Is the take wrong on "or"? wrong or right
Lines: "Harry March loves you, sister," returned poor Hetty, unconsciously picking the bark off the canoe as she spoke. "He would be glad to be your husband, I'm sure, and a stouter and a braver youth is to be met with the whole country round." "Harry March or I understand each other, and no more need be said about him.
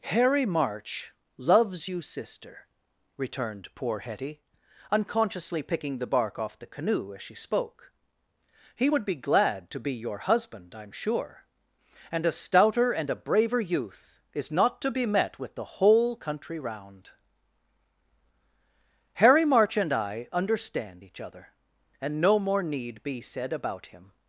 wrong